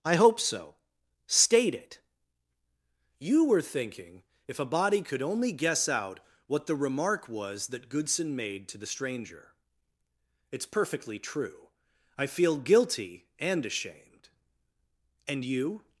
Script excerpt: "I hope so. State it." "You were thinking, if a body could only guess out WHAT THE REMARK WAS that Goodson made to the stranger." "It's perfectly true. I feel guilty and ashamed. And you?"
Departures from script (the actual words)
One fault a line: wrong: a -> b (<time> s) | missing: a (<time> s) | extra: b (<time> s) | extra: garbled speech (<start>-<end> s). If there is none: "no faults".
no faults